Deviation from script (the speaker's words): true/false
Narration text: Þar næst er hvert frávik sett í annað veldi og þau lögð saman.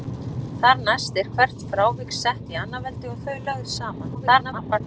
true